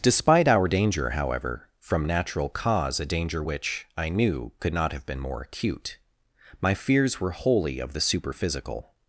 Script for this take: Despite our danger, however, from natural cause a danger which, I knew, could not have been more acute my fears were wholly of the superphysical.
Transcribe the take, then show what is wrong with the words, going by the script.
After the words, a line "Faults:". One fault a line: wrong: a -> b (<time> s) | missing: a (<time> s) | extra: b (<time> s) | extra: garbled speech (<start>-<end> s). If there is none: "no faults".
Despite our danger, however, from natural cause a danger which, I knew, could not have been more acute my fears were wholly of the superphysical.
Faults:
no faults